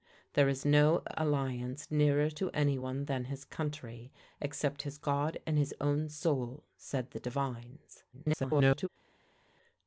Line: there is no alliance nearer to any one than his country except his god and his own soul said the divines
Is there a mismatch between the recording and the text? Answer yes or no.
yes